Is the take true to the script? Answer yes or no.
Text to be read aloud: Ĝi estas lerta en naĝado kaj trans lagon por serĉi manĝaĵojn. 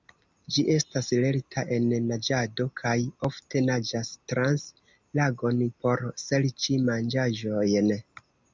no